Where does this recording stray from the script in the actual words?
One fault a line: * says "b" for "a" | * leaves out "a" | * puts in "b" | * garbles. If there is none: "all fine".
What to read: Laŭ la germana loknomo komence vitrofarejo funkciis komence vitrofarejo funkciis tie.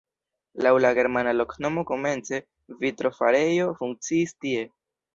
* leaves out "komence vitrofarejo funkciis"